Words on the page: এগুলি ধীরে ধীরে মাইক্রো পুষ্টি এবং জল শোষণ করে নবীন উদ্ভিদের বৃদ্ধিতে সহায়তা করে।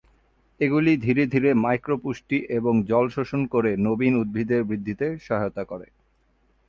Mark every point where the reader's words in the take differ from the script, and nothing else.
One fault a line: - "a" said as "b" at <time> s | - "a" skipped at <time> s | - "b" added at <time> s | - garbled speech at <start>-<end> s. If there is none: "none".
none